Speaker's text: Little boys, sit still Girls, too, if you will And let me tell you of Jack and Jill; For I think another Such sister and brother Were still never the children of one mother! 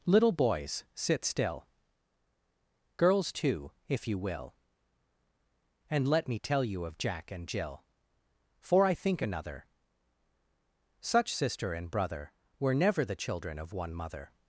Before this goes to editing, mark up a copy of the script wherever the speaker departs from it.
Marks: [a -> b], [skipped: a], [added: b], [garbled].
Little boys, sit still Girls, too, if you will And let me tell you of Jack and Jill; For I think another Such sister and brother Were [skipped: still] never the children of one mother!